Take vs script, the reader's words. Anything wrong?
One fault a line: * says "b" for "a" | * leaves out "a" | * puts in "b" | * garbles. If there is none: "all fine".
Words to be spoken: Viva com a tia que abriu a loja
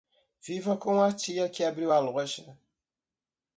all fine